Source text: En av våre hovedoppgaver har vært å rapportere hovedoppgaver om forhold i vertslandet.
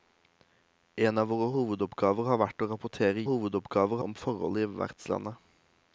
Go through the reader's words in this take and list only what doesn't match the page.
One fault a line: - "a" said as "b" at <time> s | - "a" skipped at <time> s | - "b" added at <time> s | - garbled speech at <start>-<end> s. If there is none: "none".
none